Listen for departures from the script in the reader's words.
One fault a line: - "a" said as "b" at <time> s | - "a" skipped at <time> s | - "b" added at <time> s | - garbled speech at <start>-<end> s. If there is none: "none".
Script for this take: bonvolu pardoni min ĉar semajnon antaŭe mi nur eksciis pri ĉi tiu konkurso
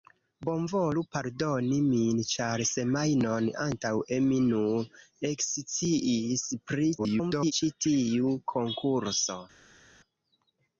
- garbled speech at 7.0-7.5 s